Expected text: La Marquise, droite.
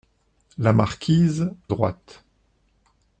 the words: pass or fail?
pass